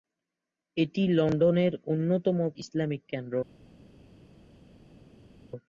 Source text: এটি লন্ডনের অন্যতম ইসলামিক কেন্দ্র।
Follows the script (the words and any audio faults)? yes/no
yes